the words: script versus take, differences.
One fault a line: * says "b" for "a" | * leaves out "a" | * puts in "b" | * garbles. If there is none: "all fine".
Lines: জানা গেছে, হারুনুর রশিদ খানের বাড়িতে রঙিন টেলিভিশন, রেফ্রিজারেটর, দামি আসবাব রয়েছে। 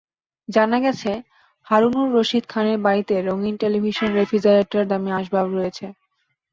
all fine